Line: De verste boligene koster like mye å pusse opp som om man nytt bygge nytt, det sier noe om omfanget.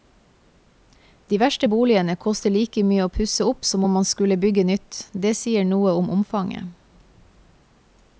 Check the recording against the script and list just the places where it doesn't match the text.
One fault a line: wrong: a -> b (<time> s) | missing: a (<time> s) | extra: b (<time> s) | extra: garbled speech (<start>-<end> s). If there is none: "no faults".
wrong: nytt -> skulle (4.1 s)